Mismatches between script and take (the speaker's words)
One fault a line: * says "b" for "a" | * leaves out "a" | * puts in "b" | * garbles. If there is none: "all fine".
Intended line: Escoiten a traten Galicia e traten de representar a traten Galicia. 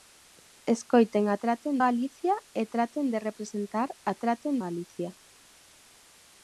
all fine